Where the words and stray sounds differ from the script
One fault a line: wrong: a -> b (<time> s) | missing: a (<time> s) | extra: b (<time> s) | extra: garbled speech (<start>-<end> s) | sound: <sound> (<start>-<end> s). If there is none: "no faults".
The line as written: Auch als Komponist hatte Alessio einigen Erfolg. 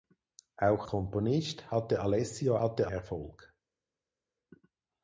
missing: als (0.9 s)
wrong: einigen -> hatte (2.6 s)